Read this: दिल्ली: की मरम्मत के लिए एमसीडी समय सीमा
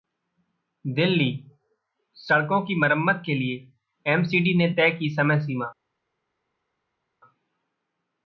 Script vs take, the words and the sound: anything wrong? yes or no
yes